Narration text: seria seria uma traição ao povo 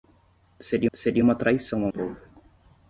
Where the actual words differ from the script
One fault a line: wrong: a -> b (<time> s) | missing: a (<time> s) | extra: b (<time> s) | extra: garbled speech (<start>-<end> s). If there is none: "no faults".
no faults